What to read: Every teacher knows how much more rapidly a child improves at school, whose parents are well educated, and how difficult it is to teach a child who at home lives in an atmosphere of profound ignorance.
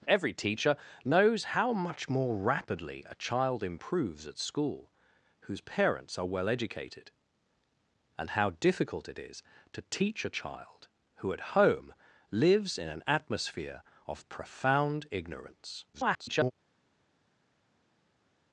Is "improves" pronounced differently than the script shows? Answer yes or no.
no